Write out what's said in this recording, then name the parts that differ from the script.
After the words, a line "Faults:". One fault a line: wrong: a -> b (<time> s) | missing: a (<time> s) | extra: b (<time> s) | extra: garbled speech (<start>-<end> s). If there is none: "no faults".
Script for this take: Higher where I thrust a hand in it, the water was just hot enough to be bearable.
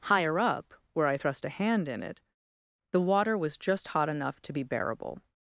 Higher up, where I thrust a hand in it, the water was just hot enough to be bearable.
Faults:
extra: up (0.4 s)